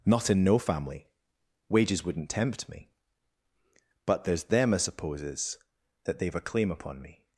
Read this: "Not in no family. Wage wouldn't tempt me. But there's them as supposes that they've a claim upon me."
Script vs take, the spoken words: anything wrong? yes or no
yes